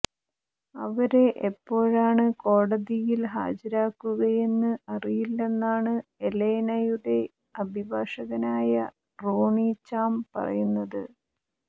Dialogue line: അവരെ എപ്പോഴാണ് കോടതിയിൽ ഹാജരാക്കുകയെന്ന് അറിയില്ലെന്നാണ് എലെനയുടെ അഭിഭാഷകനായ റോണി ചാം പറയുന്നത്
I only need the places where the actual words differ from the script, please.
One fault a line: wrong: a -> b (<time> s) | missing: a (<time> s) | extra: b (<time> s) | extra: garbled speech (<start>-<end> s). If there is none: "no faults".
no faults